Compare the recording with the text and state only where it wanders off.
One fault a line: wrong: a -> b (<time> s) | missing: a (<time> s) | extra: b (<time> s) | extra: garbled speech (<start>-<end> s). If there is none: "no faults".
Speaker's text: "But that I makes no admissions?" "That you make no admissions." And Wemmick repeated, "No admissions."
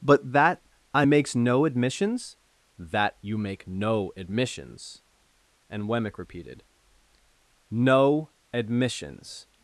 no faults